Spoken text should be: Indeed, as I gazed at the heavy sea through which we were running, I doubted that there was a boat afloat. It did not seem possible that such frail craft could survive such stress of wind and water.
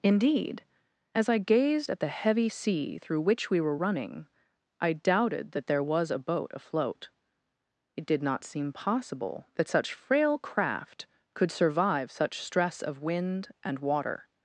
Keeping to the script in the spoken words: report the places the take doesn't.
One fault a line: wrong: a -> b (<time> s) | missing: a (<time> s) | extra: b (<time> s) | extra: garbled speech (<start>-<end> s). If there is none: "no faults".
no faults